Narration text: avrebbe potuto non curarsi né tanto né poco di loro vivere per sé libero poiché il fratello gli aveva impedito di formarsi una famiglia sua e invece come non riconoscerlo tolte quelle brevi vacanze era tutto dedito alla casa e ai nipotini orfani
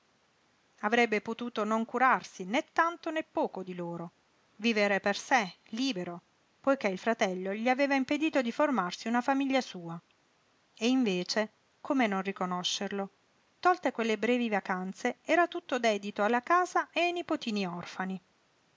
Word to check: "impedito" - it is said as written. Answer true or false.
true